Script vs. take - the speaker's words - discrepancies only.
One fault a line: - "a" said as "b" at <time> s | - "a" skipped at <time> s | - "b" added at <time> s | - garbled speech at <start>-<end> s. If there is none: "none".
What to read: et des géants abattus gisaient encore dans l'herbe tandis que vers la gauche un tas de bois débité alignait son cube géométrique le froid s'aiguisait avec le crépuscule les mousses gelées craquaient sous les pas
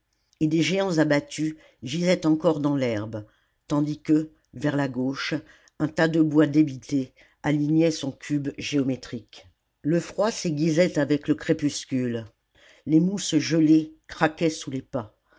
none